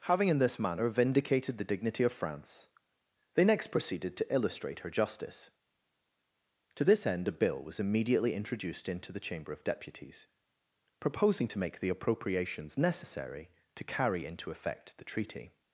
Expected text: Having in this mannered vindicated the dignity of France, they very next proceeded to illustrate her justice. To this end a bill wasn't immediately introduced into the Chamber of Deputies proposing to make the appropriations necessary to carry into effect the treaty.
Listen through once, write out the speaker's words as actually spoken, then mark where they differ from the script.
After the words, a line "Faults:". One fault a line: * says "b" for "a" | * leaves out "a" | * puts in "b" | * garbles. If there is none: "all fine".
Having in this manner vindicated the dignity of France, they next proceeded to illustrate her justice. To this end a bill was immediately introduced into the Chamber of Deputies proposing to make the appropriations necessary to carry into effect the treaty.
Faults:
* says "manner" for "mannered"
* leaves out "very"
* says "was" for "wasn't"